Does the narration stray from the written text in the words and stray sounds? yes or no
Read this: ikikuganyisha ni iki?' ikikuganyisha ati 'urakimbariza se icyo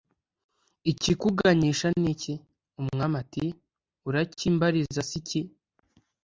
yes